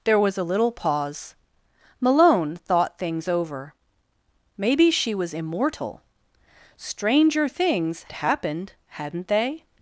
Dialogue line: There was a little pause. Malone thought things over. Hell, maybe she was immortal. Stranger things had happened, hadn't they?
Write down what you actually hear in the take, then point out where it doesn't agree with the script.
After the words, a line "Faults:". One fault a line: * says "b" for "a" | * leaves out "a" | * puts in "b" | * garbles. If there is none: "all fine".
There was a little pause. Malone thought things over. Maybe she was immortal. Stranger things happened, hadn't they?
Faults:
* leaves out "Hell"
* leaves out "had"